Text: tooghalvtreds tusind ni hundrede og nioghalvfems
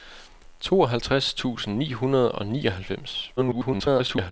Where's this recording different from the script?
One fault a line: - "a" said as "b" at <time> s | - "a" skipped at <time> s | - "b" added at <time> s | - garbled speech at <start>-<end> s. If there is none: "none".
- garbled speech at 3.4-4.3 s